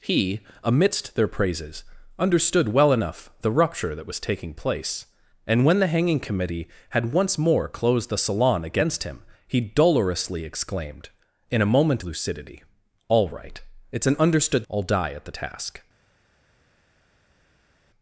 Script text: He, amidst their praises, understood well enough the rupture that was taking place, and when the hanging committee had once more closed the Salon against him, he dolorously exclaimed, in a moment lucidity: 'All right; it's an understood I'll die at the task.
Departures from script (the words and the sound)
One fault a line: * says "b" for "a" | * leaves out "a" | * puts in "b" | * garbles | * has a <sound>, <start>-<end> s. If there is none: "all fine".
all fine